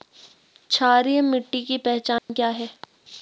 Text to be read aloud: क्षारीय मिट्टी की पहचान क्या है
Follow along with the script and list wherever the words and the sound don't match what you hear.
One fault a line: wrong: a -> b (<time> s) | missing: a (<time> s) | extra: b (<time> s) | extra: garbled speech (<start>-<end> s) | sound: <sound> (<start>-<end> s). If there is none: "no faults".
sound: dropout (2.2-2.3 s)